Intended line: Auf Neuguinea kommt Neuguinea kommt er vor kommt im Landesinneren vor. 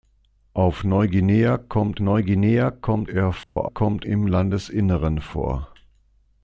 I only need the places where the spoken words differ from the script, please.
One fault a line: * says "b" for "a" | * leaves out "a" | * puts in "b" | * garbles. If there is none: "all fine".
all fine